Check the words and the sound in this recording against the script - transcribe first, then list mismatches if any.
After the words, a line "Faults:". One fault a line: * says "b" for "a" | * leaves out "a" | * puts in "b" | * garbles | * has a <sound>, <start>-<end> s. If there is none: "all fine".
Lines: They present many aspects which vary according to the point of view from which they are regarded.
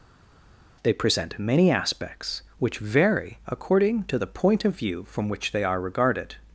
They present many aspects which vary according to the point of view from which they are regarded.
Faults:
all fine